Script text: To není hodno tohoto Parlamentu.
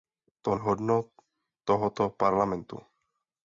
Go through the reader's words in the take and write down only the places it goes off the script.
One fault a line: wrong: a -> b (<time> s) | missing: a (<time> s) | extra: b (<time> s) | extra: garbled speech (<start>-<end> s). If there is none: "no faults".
missing: není (0.6 s)